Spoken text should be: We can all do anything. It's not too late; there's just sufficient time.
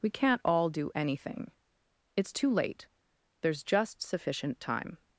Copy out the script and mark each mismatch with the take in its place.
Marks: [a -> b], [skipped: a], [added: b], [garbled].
We [can -> can't] all do anything. It's [skipped: not] too late; there's just sufficient time.